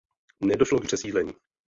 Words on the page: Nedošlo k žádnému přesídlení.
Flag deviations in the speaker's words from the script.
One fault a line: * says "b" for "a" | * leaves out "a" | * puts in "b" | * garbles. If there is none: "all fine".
* leaves out "žádnému"